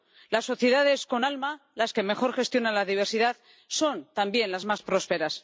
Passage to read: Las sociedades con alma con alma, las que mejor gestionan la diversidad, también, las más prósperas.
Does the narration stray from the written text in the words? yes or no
yes